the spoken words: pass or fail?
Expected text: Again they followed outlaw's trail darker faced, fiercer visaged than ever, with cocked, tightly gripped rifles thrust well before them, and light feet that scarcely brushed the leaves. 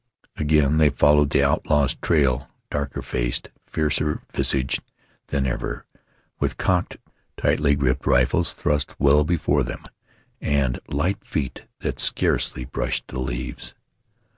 fail